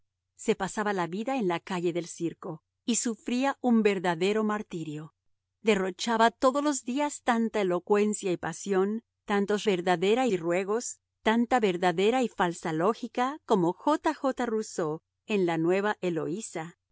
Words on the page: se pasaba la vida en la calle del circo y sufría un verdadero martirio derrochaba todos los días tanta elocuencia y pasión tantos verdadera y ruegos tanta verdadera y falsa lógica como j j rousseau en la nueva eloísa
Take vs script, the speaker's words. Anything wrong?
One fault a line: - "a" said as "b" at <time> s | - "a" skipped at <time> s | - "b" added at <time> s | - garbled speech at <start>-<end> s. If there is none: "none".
none